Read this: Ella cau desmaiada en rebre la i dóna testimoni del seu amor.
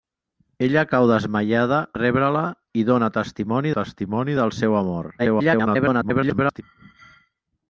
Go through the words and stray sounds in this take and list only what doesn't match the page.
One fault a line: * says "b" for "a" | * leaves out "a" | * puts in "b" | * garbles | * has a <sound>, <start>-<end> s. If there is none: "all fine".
* leaves out "en"
* puts in "testimoni"
* garbles